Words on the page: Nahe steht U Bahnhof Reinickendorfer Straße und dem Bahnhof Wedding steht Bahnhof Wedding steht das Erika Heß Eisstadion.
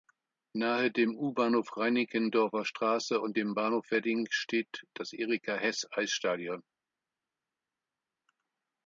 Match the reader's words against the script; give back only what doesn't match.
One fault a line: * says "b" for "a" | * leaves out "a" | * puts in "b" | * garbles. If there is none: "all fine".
* says "dem" for "steht"
* leaves out "Bahnhof Wedding steht"